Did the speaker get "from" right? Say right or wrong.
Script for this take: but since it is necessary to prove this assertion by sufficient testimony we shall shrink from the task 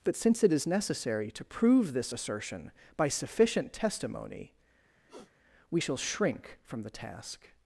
right